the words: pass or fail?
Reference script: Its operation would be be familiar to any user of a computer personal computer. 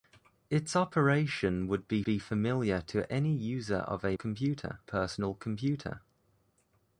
pass